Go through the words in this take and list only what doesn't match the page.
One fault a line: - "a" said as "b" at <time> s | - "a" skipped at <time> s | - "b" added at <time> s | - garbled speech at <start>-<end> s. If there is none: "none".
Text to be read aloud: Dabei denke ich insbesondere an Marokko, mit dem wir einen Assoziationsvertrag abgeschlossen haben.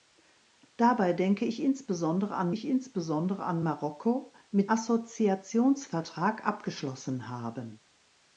- "Marokko mit dem wir einen" said as "ich insbesondere an Marokko mit" at 2.5 s